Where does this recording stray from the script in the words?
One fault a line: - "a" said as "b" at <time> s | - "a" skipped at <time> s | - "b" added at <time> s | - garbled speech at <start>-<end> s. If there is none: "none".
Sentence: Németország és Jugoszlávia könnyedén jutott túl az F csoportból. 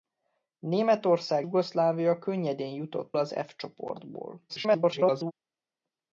- "és" skipped at 1.5 s
- "túl" skipped at 3.1 s
- garbled speech at 4.5-5.3 s